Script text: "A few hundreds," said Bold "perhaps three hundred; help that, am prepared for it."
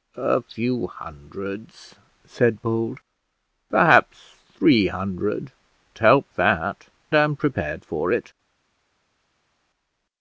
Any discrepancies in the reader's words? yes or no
no